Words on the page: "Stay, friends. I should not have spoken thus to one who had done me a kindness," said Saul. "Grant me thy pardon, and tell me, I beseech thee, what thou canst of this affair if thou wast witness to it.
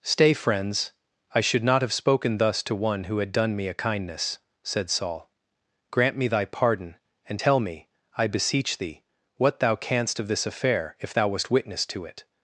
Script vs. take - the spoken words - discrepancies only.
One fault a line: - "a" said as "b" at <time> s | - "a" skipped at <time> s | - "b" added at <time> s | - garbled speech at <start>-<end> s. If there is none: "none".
none